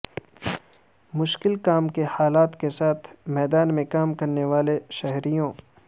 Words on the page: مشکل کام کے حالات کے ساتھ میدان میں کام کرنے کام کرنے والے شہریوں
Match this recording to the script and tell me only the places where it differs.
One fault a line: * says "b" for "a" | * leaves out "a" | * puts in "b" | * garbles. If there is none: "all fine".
* leaves out "کام کرنے"